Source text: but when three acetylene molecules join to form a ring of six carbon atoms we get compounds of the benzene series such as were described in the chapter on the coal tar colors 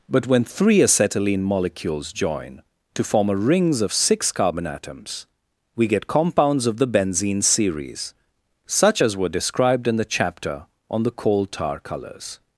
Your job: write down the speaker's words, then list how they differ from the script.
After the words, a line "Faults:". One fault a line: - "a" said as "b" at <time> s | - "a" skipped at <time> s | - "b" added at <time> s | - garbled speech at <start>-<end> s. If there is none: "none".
but when three acetylene molecules join to form a rings of six carbon atoms we get compounds of the benzene series such as were described in the chapter on the coal tar colors
Faults:
- "ring" said as "rings" at 3.4 s